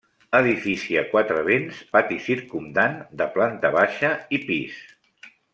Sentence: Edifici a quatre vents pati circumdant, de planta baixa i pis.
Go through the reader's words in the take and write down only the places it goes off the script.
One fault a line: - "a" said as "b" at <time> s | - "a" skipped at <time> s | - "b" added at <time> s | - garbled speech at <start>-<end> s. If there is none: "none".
none